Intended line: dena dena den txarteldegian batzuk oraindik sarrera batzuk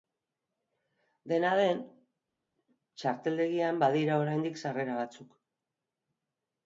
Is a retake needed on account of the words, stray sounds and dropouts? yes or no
yes